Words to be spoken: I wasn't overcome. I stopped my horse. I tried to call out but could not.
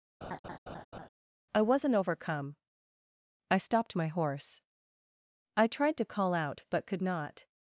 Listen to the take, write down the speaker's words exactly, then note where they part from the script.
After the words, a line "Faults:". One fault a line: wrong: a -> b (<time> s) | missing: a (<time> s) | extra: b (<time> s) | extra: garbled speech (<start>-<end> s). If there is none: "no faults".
I wasn't overcome. I stopped my horse. I tried to call out but could not.
Faults:
no faults